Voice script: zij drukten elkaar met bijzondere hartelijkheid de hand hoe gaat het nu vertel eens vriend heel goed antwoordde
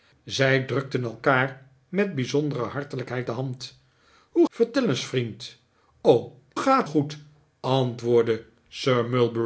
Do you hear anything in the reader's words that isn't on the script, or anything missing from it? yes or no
yes